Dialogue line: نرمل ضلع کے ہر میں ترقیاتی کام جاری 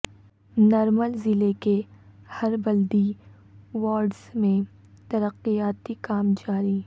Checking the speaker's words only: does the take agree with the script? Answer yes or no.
no